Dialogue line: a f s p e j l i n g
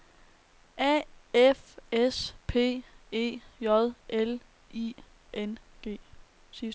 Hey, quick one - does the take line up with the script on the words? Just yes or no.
yes